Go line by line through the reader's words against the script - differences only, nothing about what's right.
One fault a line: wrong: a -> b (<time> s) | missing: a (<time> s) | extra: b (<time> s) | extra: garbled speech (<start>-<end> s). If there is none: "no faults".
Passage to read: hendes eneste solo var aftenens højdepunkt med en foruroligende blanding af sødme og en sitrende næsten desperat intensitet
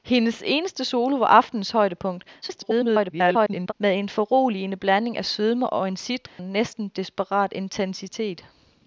extra: garbled speech (2.4-3.7 s)